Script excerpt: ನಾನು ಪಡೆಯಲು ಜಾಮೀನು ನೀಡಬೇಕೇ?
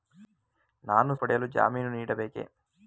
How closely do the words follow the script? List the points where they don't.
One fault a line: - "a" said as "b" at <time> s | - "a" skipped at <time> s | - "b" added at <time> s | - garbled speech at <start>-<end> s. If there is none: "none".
none